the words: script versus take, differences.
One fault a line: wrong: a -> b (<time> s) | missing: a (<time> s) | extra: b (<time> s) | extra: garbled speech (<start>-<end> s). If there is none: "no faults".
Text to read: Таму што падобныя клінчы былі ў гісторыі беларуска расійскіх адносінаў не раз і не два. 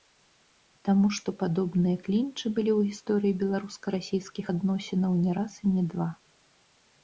no faults